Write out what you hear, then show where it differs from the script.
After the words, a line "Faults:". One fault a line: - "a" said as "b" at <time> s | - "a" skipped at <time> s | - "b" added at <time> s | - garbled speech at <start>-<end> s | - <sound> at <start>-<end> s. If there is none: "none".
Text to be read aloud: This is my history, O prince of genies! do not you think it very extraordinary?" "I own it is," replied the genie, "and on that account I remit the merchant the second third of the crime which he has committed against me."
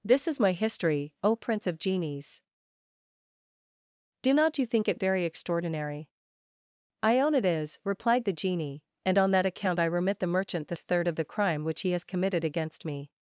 This is my history, O prince of genies! do not you think it very extraordinary?" "I own it is," replied the genie, "and on that account I remit the merchant the third of the crime which he has committed against me."
Faults:
- "second" skipped at 10.8 s